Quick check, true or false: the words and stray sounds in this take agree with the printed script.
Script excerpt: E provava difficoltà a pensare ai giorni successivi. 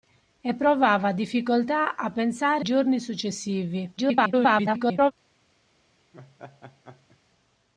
false